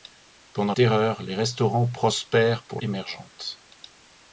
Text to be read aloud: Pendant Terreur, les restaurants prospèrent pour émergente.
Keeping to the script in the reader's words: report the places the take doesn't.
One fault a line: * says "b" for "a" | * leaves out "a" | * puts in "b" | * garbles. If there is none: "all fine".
all fine